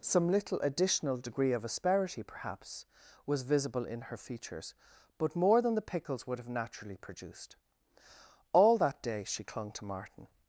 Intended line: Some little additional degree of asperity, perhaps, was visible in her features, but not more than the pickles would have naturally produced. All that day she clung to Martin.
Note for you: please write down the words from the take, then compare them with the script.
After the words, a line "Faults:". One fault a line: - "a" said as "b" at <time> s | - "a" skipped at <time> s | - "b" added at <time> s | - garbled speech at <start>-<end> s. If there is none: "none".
Some little additional degree of asperity, perhaps, was visible in her features, but more than the pickles would have naturally produced. All that day she clung to Martin.
Faults:
- "not" skipped at 5.3 s